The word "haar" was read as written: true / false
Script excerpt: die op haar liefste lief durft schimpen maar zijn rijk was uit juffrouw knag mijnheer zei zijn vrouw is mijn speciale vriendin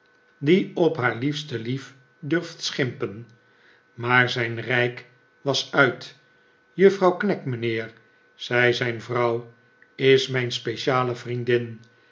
true